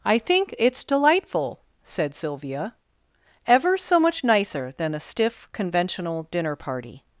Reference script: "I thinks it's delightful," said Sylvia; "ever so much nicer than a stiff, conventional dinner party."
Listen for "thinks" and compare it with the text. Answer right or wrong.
wrong